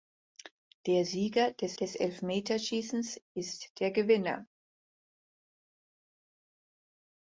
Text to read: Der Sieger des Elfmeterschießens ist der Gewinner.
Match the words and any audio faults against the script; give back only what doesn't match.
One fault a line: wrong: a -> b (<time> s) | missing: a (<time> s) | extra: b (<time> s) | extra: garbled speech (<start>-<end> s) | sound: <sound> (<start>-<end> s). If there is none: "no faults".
extra: des (1.7 s)